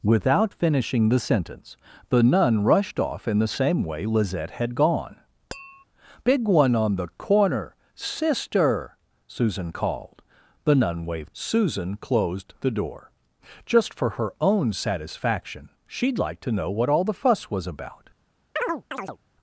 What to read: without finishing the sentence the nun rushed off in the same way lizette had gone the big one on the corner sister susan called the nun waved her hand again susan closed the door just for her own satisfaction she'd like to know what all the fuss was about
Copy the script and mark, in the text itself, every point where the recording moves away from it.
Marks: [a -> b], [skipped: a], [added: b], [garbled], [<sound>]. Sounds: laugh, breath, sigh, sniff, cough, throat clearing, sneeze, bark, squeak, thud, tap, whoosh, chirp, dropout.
without finishing the sentence the nun rushed off in the same way lizette had gone [skipped: the] [tap] big one on the corner sister susan called the nun waved [skipped: her hand again] susan closed the door just for her own satisfaction she'd like to know what all the fuss was about [chirp]